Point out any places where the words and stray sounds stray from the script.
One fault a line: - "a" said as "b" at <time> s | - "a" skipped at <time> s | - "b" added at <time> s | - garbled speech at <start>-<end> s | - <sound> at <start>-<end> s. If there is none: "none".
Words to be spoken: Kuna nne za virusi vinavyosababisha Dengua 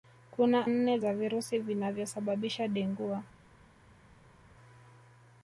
none